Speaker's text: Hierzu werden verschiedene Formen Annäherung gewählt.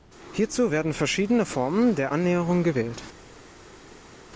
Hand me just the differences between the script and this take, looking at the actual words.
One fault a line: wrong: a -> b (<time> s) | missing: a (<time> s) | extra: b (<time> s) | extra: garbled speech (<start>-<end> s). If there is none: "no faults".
extra: der (2.0 s)